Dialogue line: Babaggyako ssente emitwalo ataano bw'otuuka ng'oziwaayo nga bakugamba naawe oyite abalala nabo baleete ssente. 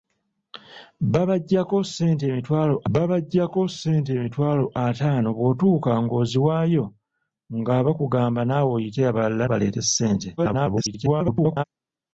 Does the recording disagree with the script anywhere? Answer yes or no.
yes